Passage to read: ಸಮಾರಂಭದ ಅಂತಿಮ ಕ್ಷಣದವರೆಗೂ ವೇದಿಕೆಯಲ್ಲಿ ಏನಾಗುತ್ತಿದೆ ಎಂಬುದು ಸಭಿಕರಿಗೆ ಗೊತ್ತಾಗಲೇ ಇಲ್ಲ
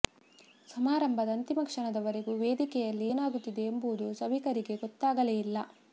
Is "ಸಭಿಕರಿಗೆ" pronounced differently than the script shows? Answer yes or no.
no